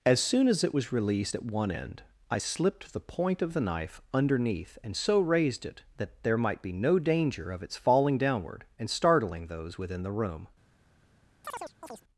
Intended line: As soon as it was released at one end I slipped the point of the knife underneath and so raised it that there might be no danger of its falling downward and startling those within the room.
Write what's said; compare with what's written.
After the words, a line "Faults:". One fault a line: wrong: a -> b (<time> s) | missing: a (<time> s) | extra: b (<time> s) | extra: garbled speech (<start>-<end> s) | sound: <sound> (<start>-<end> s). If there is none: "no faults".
As soon as it was released at one end I slipped the point of the knife underneath and so raised it that there might be no danger of its falling downward and startling those within the room.
Faults:
sound: chirp (11.4-12.0 s)